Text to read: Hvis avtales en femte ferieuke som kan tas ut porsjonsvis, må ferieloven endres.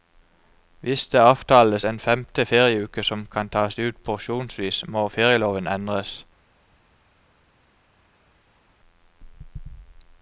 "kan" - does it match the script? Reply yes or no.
yes